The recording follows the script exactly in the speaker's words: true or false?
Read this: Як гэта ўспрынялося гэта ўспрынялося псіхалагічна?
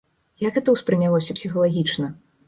false